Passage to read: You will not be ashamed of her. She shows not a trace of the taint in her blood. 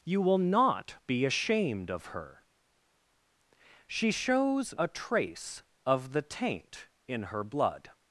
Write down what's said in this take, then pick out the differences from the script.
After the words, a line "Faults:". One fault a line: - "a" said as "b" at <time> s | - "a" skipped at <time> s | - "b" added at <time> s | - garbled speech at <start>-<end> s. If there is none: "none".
You will not be ashamed of her. She shows a trace of the taint in her blood.
Faults:
- "not" skipped at 4.7 s